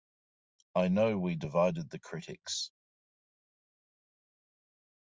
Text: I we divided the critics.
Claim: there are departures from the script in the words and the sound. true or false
true